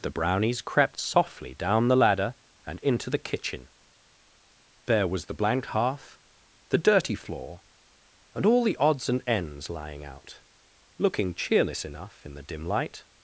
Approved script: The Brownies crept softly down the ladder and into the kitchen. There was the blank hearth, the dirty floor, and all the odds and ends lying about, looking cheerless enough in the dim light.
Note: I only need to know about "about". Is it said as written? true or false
false